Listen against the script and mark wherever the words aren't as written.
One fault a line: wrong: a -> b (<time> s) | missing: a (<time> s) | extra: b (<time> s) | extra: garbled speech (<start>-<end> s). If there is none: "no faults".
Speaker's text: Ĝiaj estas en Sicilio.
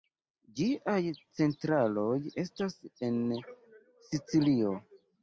extra: centraloj (1.4 s)